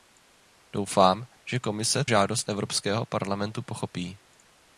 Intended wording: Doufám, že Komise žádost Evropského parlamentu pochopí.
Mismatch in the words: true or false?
false